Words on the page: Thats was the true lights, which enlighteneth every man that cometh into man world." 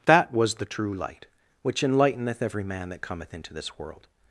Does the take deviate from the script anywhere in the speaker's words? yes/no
yes